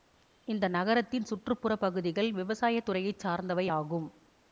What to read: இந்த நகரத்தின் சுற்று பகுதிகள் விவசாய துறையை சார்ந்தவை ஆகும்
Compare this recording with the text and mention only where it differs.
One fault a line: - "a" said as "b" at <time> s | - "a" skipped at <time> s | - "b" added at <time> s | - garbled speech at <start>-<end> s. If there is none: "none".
- "புற" added at 1.6 s